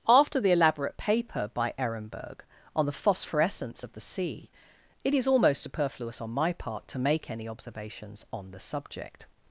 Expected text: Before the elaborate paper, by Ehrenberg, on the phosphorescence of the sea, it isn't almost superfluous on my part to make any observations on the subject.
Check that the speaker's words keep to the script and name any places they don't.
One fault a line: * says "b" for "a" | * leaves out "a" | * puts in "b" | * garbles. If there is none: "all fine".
* says "After" for "Before"
* says "is" for "isn't"